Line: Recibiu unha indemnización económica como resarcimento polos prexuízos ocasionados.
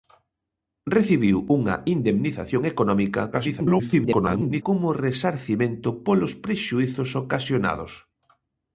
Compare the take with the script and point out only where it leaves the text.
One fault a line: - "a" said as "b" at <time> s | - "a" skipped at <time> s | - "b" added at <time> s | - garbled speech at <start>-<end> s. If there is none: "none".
- garbled speech at 3.3-4.6 s